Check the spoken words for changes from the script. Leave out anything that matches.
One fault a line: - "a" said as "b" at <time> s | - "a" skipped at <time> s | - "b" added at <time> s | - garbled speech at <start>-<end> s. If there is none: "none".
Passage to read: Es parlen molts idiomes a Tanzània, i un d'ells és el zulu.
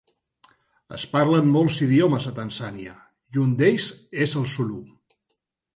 none